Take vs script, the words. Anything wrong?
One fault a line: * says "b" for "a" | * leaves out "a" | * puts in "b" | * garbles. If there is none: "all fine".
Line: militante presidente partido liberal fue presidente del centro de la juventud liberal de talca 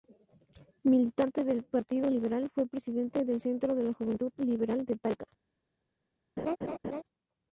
* says "del" for "presidente"